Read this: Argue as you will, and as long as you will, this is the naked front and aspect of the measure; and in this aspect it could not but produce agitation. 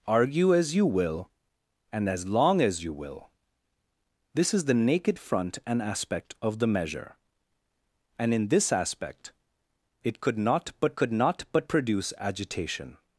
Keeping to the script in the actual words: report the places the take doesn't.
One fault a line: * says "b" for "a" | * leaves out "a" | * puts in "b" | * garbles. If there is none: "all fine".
* puts in "could not but"